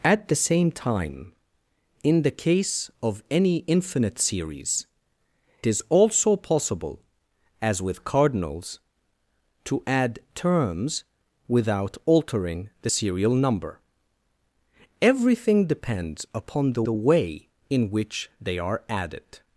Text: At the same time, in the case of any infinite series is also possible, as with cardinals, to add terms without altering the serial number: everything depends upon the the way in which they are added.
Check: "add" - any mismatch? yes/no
no